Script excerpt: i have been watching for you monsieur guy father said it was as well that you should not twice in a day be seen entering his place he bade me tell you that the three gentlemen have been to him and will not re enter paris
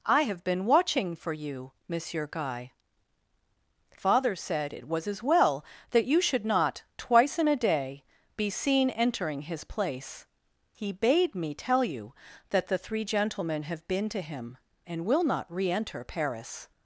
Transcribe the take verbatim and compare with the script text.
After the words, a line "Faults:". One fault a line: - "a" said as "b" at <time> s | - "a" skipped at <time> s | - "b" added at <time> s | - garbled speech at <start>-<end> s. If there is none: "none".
i have been watching for you monsieur guy father said it was as well that you should not twice in a day be seen entering his place he bade me tell you that the three gentlemen have been to him and will not re enter paris
Faults:
none